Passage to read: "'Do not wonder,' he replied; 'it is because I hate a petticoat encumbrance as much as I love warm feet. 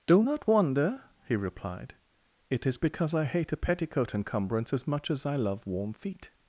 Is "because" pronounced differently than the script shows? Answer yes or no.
no